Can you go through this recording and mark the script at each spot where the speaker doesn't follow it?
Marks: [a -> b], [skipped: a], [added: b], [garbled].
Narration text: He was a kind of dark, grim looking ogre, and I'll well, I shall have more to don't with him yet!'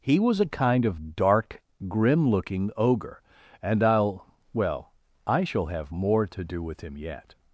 He was a kind of dark, grim looking ogre, and I'll well, I shall have more to [don't -> do] with him yet!'